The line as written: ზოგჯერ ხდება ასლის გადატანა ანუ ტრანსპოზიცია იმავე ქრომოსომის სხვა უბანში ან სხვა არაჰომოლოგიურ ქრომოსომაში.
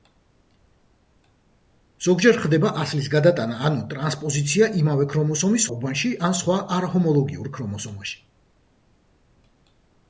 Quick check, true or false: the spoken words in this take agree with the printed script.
false